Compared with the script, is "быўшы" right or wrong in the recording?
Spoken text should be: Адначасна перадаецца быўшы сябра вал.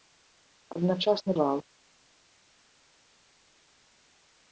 wrong